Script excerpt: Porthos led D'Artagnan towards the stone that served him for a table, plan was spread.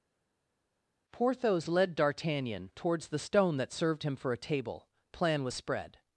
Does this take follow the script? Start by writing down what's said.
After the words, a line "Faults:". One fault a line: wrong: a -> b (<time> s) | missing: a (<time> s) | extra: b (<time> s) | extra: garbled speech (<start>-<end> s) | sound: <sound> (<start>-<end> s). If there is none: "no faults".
Porthos led D'Artagnan towards the stone that served him for a table, plan was spread.
Faults:
no faults